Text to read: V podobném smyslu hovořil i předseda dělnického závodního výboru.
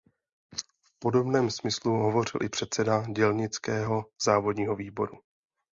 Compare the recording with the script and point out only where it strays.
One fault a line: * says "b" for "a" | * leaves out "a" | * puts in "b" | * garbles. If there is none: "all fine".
all fine